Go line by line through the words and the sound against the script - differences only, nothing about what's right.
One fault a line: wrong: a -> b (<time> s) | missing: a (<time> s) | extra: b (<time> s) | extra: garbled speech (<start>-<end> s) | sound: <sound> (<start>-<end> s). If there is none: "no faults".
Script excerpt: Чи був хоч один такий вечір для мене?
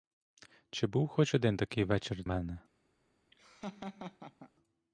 missing: для (2.2 s)
sound: laugh (3.3-4.5 s)